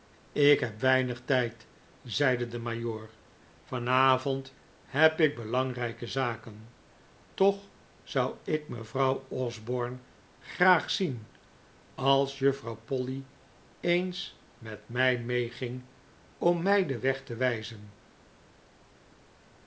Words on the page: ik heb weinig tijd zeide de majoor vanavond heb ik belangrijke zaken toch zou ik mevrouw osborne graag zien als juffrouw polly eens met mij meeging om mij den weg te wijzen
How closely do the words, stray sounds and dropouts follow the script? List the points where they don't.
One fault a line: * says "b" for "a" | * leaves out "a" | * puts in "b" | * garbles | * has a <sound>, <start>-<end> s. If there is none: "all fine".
all fine